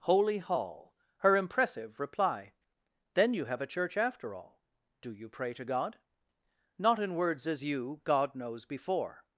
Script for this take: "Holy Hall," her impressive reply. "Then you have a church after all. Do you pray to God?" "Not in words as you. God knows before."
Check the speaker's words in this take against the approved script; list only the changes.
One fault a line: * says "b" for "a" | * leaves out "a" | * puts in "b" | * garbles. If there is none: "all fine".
all fine